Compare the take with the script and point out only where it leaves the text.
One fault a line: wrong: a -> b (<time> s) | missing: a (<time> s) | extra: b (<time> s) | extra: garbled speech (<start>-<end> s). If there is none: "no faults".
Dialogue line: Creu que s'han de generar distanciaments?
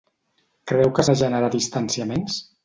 missing: s'han (1.1 s)